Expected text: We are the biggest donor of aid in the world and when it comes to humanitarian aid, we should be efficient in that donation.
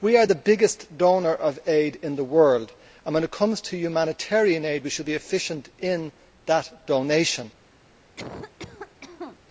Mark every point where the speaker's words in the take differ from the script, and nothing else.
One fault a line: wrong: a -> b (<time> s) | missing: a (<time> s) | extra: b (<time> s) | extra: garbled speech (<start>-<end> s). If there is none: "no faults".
no faults